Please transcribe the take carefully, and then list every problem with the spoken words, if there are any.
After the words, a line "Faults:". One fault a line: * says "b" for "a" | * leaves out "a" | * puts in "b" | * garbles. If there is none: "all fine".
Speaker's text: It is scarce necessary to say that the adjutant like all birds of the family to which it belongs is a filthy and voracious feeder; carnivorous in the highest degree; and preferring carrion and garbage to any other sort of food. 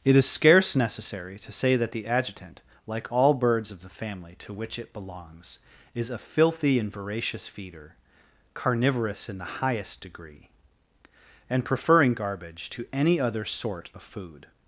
It is scarce necessary to say that the adjutant like all birds of the family to which it belongs is a filthy and voracious feeder; carnivorous in the highest degree; and preferring garbage to any other sort of food.
Faults:
* leaves out "carrion and"